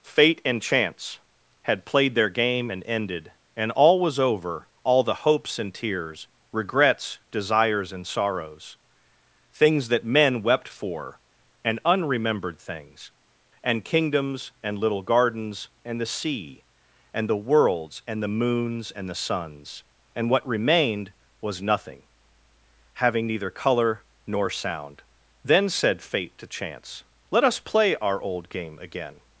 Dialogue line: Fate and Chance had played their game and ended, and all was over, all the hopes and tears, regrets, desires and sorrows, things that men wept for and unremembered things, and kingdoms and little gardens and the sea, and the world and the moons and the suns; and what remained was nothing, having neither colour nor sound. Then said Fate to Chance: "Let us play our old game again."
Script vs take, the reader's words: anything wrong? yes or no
yes